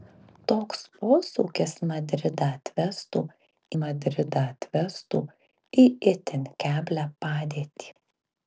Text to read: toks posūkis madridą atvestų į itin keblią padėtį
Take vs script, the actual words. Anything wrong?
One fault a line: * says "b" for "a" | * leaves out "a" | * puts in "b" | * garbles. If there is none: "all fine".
* puts in "madridą atvestų"